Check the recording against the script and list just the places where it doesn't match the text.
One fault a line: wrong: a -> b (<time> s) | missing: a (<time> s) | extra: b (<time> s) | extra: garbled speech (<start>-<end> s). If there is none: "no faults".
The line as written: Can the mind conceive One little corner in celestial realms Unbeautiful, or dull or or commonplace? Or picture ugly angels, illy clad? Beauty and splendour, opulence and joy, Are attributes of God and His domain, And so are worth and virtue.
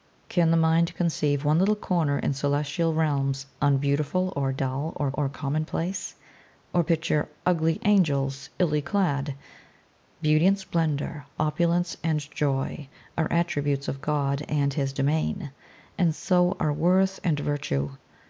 no faults